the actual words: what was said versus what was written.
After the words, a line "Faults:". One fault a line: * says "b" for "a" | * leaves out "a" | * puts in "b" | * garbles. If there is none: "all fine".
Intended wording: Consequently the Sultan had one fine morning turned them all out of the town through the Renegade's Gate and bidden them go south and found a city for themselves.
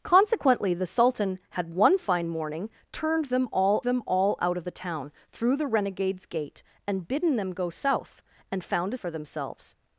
Consequently the Sultan had one fine morning turned them all them all out of the town through the Renegade's Gate and bidden them go south and found a for themselves.
Faults:
* puts in "them all"
* leaves out "city"